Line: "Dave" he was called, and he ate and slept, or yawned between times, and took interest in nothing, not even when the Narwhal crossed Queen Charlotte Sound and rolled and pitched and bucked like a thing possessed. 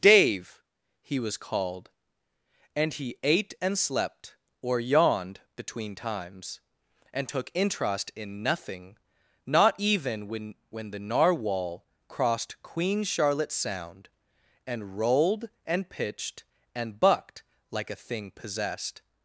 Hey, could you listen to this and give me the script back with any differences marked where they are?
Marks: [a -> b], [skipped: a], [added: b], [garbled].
"Dave" he was called, and he ate and slept, or yawned between times, and took interest in nothing, not even when [added: when] the Narwhal crossed Queen Charlotte Sound and rolled and pitched and bucked like a thing possessed.